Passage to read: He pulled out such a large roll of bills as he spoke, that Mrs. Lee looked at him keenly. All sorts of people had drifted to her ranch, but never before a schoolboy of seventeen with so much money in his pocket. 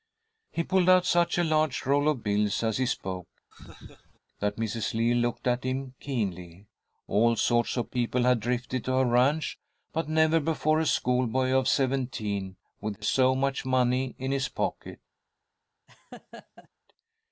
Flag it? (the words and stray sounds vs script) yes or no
yes